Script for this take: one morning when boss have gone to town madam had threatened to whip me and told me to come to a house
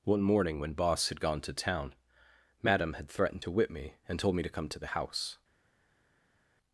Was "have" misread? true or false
true